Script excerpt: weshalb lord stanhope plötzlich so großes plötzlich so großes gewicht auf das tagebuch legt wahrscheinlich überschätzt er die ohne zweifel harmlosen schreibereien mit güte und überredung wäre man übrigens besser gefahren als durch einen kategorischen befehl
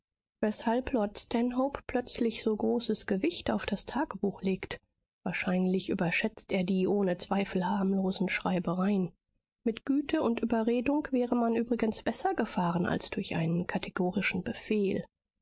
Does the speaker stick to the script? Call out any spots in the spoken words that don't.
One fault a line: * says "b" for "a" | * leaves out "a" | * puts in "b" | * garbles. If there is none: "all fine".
* leaves out "plötzlich so großes"